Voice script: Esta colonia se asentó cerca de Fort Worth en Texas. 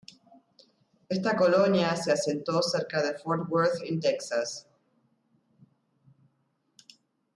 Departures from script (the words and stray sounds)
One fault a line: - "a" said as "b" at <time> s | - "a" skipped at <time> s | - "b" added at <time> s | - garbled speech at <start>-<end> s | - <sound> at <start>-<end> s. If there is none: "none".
none